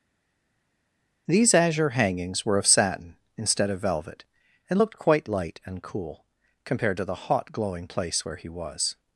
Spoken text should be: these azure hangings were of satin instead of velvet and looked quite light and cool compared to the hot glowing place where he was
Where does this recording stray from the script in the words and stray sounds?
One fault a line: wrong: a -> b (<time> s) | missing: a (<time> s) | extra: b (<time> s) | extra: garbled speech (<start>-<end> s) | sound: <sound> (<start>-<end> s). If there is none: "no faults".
no faults